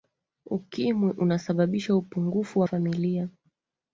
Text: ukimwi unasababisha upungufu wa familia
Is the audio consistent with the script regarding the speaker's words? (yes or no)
yes